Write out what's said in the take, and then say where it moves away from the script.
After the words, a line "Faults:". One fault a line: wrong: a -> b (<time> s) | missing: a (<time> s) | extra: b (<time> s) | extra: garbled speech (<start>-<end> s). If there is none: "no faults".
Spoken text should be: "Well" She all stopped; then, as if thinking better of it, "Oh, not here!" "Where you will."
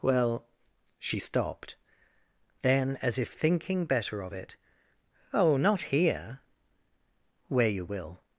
"Well" She stopped; then, as if thinking better of it, "Oh, not here!" "Where you will."
Faults:
missing: all (1.2 s)